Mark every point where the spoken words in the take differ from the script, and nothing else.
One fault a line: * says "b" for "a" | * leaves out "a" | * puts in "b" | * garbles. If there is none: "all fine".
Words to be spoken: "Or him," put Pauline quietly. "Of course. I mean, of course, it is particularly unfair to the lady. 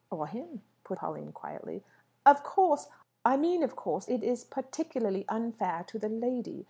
all fine